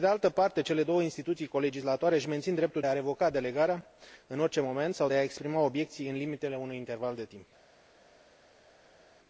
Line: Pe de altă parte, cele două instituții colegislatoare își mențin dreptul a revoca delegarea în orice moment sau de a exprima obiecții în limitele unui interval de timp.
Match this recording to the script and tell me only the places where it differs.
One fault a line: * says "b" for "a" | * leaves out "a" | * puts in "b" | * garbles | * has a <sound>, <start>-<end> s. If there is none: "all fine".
all fine